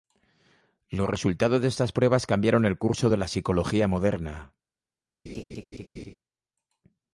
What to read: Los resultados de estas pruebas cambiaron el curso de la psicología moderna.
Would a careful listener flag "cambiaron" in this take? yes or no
no